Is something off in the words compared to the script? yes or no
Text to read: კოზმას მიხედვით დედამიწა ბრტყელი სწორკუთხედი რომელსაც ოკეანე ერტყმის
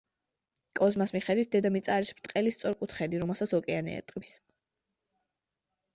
yes